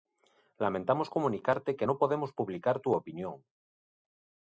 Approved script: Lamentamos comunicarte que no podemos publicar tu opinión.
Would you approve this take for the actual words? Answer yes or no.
yes